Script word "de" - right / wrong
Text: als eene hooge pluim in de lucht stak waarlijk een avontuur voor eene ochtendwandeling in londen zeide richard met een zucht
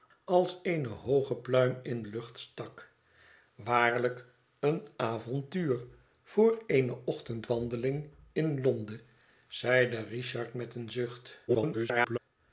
wrong